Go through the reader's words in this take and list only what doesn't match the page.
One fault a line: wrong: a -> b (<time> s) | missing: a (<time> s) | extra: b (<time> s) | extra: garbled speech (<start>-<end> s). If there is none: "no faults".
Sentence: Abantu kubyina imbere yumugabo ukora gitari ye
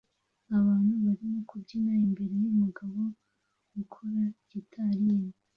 extra: barimo (1.1 s)